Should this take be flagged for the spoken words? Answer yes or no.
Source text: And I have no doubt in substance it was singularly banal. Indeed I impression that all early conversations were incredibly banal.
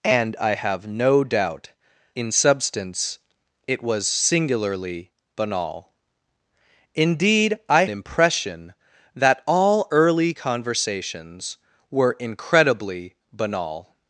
no